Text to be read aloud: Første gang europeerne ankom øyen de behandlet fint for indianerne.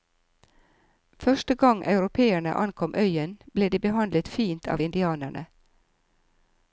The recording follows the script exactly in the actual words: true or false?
false